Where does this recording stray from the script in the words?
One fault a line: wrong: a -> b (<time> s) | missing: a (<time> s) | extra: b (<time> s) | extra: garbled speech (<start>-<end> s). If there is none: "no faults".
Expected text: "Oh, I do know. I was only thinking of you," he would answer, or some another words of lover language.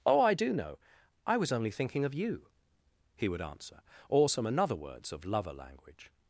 no faults